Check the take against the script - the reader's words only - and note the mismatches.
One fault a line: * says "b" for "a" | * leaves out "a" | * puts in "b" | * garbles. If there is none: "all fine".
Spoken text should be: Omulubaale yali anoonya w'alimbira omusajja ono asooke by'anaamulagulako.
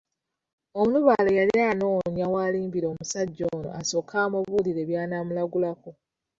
* puts in "amubuulire"